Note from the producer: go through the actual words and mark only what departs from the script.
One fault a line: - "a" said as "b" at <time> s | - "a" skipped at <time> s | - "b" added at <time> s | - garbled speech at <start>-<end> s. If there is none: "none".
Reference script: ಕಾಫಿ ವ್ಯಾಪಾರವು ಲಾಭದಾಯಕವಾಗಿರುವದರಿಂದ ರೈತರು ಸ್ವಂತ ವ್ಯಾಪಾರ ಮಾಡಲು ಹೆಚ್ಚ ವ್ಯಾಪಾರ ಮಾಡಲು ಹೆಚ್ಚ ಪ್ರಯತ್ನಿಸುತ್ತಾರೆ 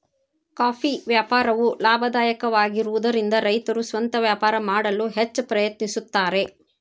- "ವ್ಯಾಪಾರ ಮಾಡಲು ಹೆಚ್ಚ" skipped at 5.4 s